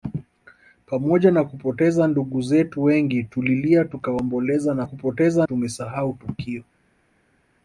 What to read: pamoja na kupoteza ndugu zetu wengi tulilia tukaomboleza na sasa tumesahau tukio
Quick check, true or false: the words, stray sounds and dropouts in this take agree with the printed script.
false